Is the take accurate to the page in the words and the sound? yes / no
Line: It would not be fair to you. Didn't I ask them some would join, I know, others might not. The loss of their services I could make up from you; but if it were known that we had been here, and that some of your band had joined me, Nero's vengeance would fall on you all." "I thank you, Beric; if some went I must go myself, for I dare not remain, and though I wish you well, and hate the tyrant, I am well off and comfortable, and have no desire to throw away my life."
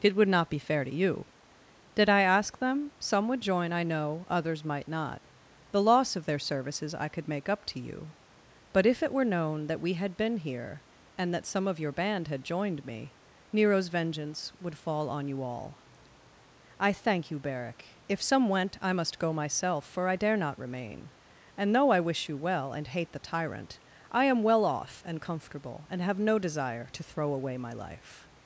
no